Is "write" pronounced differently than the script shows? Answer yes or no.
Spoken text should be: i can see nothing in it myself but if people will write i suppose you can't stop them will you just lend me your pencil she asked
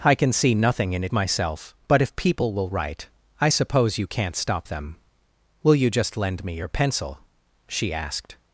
no